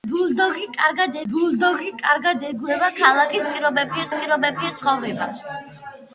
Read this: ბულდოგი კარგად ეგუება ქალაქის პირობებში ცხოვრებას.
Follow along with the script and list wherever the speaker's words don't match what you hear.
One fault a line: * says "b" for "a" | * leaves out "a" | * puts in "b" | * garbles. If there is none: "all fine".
* puts in "ბულდოგი კარგად"
* puts in "პირობებში"